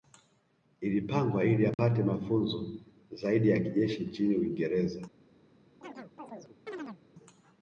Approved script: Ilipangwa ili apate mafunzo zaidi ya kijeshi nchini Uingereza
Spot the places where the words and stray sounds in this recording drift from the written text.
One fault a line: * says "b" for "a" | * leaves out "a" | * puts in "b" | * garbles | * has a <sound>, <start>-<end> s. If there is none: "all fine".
* has a dropout, 1.7-1.8 s
* has a chirp, 5.8-7.0 s